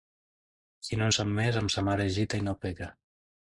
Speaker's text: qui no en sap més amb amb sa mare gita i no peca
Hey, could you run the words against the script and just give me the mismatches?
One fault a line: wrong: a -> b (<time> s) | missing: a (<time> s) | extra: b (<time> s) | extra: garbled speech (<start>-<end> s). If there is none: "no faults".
missing: amb (1.7 s)
extra: es (2.1 s)